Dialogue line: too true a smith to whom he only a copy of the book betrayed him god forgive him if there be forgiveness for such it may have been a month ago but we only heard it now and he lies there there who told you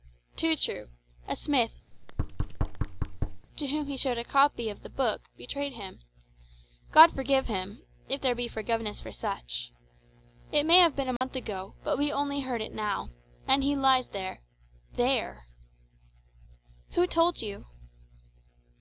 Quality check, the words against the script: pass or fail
fail